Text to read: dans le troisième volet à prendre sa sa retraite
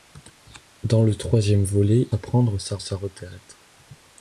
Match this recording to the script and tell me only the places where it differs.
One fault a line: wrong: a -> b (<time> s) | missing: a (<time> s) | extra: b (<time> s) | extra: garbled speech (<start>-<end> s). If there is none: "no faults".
no faults